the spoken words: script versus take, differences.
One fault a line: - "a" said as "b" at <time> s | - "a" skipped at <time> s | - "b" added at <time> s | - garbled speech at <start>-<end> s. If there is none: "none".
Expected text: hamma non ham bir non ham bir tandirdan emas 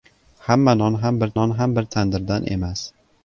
none